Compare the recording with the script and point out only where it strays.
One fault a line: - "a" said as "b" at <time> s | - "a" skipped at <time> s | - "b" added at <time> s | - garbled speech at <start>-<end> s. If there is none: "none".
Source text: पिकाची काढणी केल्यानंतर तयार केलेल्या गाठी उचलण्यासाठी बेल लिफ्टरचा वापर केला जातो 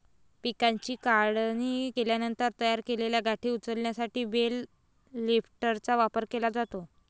none